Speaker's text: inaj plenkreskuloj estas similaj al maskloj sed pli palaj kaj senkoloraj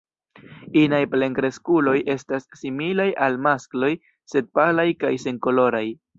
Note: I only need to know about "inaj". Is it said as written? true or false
true